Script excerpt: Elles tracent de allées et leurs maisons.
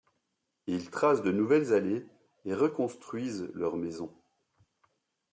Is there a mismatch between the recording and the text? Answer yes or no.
yes